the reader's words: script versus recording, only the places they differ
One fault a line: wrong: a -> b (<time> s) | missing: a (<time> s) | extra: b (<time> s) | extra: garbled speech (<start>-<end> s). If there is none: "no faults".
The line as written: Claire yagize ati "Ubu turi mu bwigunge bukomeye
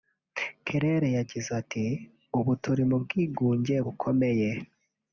no faults